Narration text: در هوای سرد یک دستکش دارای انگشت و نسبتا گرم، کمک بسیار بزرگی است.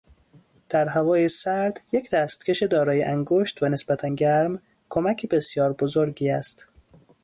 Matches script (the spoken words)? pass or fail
pass